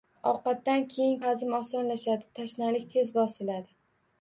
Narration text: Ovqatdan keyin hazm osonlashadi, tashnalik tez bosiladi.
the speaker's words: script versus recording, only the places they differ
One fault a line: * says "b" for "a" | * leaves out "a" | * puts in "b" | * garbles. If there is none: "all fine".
all fine